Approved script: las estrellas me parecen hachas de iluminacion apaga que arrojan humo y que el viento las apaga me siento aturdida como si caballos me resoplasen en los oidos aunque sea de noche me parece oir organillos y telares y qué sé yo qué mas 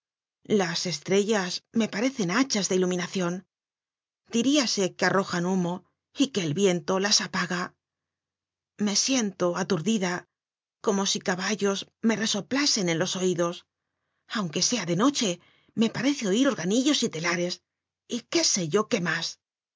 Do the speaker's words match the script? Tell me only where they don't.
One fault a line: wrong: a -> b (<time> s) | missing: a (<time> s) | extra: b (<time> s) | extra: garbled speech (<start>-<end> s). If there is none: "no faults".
wrong: apaga -> diríase (4.4 s)